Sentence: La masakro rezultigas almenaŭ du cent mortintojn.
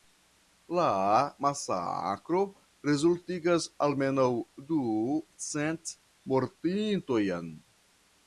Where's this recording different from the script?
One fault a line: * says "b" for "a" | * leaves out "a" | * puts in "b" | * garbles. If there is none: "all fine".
all fine